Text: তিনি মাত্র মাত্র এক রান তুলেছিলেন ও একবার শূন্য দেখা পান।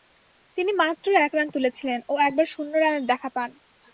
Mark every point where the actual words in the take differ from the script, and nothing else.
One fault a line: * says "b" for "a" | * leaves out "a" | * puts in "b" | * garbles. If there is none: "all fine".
* leaves out "মাত্র"
* puts in "রানের"